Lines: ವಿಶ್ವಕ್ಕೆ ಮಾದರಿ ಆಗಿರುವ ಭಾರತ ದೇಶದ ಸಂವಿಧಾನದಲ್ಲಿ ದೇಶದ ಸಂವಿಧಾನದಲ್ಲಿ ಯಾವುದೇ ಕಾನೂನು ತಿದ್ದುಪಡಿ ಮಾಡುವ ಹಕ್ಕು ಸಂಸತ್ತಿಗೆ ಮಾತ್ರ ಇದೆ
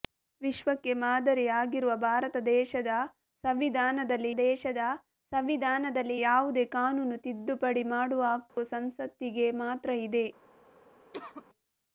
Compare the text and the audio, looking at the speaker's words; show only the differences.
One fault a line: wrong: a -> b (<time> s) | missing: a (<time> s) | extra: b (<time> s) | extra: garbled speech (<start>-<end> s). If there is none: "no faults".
no faults